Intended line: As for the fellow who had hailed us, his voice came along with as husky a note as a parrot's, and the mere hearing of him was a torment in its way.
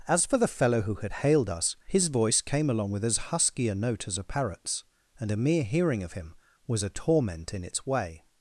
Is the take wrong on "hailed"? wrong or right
right